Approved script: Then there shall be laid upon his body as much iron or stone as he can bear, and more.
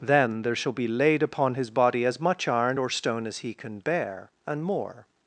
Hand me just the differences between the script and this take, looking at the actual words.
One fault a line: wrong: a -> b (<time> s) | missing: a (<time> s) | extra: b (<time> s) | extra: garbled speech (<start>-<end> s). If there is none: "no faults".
no faults